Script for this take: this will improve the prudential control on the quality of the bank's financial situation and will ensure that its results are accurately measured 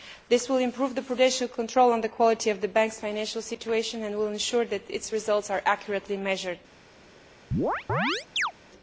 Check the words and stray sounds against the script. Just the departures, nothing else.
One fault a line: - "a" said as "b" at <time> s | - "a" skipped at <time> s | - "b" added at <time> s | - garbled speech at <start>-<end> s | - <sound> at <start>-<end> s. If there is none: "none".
- chirp at 7.5-8.5 s